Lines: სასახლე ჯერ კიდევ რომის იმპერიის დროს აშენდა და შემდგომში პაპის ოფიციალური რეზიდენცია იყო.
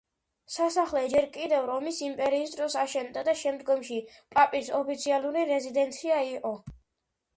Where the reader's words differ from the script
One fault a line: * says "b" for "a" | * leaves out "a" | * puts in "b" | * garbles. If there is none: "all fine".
all fine